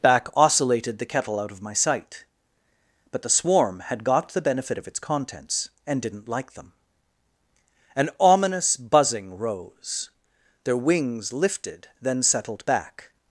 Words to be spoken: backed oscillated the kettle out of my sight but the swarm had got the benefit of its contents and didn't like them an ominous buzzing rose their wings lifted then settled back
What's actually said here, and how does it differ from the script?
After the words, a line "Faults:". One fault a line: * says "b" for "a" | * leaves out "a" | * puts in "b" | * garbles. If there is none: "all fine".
back oscillated the kettle out of my sight but the swarm had got the benefit of its contents and didn't like them an ominous buzzing rose their wings lifted then settled back
Faults:
* says "back" for "backed"